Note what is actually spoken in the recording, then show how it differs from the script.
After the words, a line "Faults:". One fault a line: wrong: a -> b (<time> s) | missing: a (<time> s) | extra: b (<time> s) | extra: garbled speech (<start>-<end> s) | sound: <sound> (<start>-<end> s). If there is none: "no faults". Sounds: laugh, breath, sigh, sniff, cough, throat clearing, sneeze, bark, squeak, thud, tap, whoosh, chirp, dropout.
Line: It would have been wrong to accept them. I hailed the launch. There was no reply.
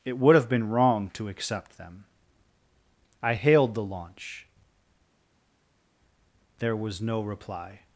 It would have been wrong to accept them. I hailed the launch. There was no reply.
Faults:
no faults